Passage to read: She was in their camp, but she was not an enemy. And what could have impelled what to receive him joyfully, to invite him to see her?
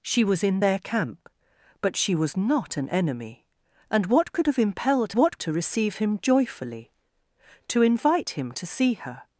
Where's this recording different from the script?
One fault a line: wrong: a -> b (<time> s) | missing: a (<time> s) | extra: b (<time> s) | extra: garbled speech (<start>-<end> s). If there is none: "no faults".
no faults